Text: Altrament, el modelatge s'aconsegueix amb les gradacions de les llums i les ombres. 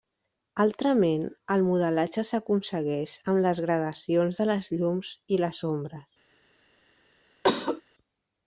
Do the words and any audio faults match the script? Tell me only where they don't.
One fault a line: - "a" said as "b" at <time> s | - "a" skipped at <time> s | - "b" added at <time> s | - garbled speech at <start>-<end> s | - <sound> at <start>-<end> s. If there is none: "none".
- cough at 7.4-7.8 s